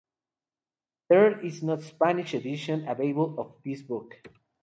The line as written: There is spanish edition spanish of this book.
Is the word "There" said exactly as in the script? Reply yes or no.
yes